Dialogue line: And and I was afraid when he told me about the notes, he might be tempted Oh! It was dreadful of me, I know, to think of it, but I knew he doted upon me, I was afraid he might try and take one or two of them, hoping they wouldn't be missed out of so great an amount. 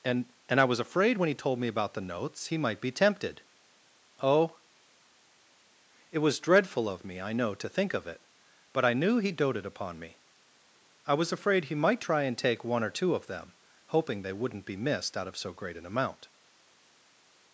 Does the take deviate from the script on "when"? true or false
false